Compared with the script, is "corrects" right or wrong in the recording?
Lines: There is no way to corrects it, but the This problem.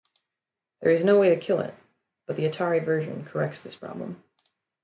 wrong